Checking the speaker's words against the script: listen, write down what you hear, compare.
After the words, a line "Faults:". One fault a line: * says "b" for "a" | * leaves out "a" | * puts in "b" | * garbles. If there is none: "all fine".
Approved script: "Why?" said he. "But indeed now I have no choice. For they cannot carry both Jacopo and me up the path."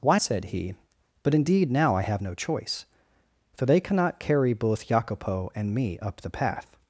"Why?" said he. "But indeed now I have no choice. For they cannot carry both Jacopo and me up the path."
Faults:
all fine